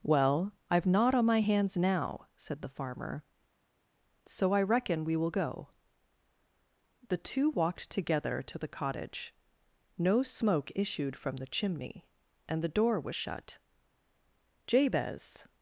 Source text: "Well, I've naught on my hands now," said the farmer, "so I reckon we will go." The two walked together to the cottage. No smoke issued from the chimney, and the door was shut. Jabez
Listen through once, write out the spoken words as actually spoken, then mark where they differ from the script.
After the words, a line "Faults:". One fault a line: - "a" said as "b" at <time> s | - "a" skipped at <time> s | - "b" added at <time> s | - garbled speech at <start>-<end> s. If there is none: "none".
"Well, I've naught on my hands now," said the farmer, "so I reckon we will go." The two walked together to the cottage. No smoke issued from the chimney, and the door was shut. Jabez
Faults:
none